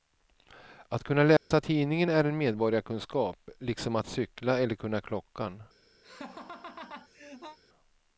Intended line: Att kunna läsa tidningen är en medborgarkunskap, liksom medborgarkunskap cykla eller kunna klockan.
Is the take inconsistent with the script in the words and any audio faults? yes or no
yes